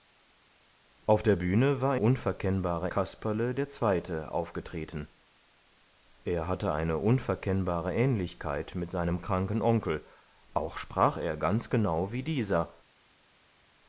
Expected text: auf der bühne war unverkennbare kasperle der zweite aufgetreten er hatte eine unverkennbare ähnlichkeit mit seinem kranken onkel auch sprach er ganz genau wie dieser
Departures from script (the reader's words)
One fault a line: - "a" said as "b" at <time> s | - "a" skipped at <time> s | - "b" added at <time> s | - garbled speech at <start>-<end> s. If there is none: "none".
none